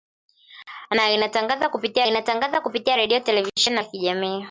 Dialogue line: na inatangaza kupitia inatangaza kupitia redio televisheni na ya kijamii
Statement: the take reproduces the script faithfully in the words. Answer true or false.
true